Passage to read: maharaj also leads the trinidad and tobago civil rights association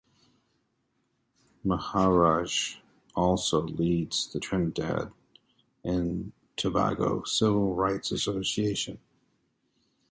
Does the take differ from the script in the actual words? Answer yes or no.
no